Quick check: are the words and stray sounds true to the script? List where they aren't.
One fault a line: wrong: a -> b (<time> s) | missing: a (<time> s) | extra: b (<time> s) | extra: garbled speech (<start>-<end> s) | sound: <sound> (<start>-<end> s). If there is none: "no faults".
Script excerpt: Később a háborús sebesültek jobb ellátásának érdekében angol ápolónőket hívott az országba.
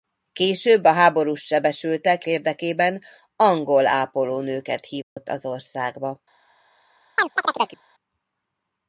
missing: jobb ellátásának (2.2 s)
sound: dropout (5.0-5.2 s)
sound: chirp (7.2-7.8 s)